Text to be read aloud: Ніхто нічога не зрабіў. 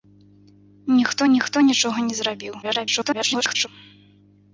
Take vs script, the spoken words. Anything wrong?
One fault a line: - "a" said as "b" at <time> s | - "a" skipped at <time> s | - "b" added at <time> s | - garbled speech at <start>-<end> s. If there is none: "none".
- "ніхто" added at 1.3 s
- garbled speech at 2.6-3.7 s